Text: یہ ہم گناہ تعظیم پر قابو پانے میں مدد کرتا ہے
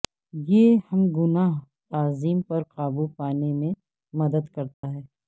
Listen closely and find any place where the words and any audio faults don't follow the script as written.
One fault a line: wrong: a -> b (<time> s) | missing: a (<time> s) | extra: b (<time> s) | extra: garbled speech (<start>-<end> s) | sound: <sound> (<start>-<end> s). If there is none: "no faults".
sound: dropout (4.7-4.8 s)